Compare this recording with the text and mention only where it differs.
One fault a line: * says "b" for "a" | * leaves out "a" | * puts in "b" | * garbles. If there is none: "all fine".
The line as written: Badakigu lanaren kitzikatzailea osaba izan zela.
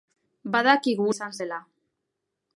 * leaves out "lanaren kitzikatzailea osaba"